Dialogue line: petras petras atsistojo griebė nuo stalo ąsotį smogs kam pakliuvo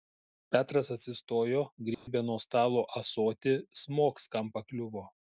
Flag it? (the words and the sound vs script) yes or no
yes